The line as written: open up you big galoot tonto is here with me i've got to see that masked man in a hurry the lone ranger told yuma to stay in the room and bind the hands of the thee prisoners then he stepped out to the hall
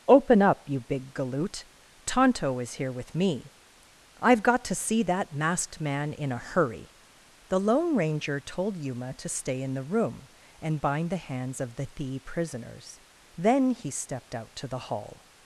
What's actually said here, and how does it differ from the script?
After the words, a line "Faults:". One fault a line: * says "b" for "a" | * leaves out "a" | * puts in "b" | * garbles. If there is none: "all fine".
open up you big galoot tonto is here with me i've got to see that masked man in a hurry the lone ranger told yuma to stay in the room and bind the hands of the thee prisoners then he stepped out to the hall
Faults:
all fine